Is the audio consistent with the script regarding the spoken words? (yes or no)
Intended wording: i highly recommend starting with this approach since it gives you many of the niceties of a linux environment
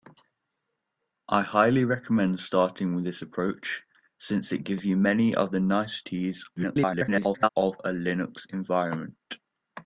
no